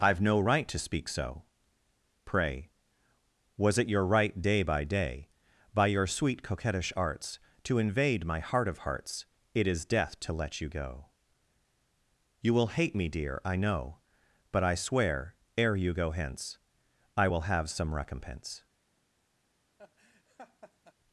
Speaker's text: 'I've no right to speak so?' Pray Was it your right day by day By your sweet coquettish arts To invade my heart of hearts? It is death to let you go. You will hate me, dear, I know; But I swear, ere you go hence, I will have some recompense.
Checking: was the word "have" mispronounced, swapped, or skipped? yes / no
no